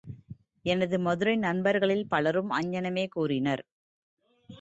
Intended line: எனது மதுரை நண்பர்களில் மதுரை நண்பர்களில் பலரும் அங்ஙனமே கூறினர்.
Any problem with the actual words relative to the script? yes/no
yes